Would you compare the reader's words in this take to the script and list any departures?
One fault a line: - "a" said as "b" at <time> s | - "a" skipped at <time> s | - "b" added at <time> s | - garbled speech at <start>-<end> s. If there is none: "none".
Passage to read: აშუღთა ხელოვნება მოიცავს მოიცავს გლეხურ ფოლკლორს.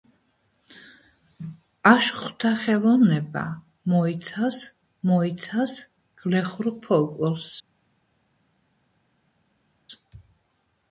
none